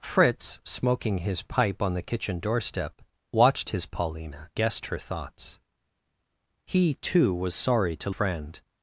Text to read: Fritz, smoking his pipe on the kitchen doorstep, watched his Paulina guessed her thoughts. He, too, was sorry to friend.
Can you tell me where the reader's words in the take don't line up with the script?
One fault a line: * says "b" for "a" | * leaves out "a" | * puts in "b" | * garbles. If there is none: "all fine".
all fine